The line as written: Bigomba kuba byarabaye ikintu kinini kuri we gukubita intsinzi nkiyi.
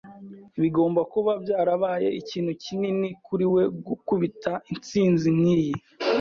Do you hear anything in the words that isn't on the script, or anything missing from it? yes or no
no